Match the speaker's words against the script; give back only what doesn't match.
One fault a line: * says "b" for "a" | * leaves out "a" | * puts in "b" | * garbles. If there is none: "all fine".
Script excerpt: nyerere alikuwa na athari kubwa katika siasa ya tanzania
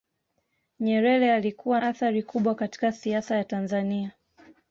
* leaves out "na"